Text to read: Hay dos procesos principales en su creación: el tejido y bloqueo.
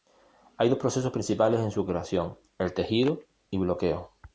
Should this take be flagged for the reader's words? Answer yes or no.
no